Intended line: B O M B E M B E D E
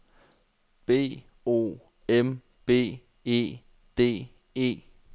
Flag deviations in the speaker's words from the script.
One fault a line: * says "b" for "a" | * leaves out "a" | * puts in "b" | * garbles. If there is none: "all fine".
* leaves out "M B E"